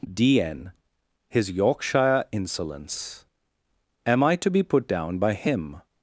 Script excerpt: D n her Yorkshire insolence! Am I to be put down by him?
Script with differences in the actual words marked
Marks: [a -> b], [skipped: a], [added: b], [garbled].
D n [her -> his] Yorkshire insolence! Am I to be put down by him?